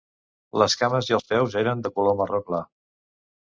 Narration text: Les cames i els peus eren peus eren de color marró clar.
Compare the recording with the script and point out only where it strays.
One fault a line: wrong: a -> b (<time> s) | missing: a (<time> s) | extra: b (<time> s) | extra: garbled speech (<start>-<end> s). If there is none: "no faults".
missing: peus eren (1.8 s)